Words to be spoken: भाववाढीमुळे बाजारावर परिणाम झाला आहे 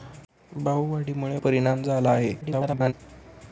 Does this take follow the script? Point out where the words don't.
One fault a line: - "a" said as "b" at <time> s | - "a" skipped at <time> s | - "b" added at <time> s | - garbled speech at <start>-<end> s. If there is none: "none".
- "बाजारावर" skipped at 1.4 s
- garbled speech at 2.4-2.9 s